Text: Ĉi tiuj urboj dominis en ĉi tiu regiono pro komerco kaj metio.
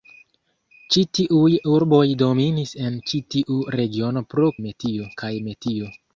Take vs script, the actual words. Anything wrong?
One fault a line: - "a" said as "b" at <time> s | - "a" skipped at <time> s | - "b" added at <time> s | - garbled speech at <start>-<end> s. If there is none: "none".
- "komerco" said as "metio" at 4.7 s